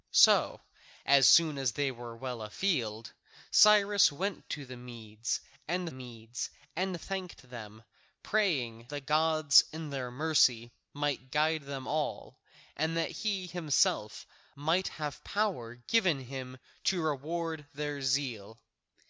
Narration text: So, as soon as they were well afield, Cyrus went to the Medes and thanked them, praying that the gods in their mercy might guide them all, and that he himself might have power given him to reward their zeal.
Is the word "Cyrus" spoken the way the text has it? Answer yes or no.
yes